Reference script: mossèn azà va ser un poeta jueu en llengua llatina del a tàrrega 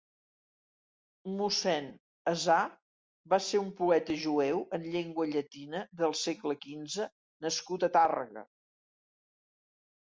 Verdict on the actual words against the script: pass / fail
fail